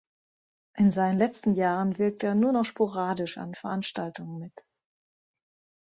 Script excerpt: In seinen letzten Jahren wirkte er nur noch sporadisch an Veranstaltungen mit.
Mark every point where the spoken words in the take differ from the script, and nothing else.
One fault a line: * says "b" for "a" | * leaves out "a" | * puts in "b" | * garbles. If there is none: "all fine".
all fine